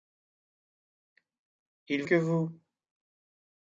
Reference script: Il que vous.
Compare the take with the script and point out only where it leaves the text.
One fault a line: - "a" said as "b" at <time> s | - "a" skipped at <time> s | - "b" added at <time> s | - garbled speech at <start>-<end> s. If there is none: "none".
none